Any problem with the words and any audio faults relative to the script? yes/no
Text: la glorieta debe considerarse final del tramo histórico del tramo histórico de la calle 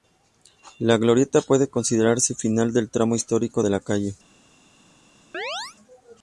yes